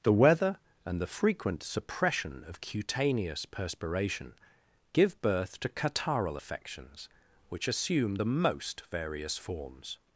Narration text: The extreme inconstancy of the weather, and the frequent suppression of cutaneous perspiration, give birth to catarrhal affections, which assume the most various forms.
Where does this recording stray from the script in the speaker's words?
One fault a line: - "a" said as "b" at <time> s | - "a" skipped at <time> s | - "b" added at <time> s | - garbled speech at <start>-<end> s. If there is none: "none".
- "extreme inconstancy of the" skipped at 0.1 s